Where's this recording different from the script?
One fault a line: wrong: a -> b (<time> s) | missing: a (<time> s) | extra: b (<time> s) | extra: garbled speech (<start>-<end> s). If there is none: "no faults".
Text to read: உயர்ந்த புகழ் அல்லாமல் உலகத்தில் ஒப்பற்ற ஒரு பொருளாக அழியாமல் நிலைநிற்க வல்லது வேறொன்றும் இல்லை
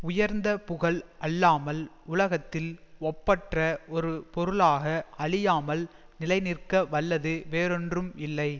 no faults